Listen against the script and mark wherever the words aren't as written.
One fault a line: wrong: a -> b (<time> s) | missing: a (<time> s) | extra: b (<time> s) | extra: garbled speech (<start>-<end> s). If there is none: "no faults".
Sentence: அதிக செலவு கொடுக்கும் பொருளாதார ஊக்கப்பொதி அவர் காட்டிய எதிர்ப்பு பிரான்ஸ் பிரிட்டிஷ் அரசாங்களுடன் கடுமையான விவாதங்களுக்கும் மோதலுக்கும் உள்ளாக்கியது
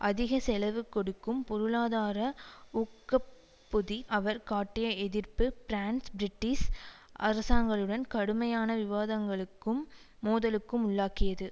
no faults